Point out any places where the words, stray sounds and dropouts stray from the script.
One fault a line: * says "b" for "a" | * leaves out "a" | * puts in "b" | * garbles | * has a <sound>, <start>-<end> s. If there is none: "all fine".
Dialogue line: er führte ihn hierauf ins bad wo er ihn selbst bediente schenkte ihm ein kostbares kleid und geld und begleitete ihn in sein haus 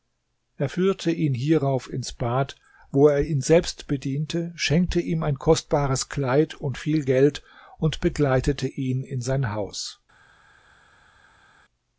* puts in "viel"